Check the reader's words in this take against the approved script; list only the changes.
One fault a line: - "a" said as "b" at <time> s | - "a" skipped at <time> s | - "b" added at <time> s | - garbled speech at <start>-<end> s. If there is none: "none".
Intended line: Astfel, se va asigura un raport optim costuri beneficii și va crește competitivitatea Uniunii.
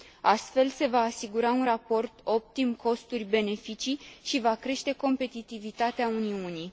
none